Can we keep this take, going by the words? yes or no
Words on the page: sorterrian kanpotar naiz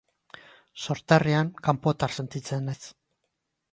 no